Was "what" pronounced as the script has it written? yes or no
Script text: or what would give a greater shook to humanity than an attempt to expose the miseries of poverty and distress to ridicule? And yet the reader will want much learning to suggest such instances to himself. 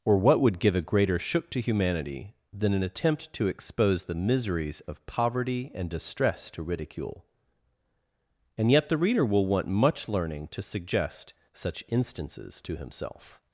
yes